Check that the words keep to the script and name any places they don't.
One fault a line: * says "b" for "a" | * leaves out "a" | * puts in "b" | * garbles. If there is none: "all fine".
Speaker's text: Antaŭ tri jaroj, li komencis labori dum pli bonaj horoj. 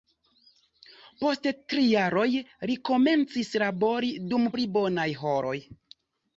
* says "Post" for "Antaŭ"